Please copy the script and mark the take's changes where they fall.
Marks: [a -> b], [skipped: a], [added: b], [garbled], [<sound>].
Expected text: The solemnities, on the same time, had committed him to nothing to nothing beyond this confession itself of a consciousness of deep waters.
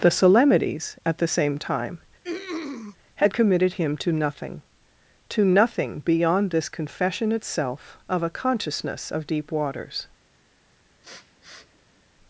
The solemnities, [on -> at] the same time, [throat clearing] had committed him to nothing to nothing beyond this confession itself of a consciousness of deep waters. [sniff]